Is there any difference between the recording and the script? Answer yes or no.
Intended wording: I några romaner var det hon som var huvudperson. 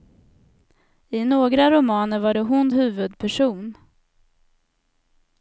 yes